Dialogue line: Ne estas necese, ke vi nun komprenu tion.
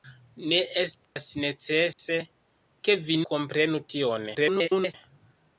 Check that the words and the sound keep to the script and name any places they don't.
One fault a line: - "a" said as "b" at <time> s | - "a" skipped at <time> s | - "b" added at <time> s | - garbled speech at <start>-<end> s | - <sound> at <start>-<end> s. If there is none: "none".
- dropout at 1.0-1.2 s
- dropout at 1.9-2.0 s
- "nun" skipped at 3.2 s
- garbled speech at 4.3-4.9 s